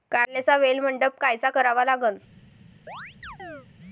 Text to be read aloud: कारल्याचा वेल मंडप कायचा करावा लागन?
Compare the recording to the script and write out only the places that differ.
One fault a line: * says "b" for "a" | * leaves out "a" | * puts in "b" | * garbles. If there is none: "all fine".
all fine